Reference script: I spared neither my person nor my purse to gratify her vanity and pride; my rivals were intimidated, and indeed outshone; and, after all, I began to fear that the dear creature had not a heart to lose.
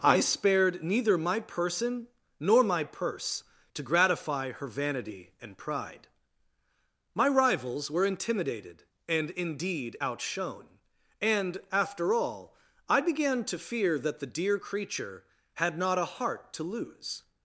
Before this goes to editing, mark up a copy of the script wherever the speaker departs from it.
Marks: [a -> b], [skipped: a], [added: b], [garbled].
I spared neither my person nor my purse to gratify her vanity and pride; my rivals were intimidated, and indeed outshone; and, after all, I began to fear that the dear creature had not a heart to lose.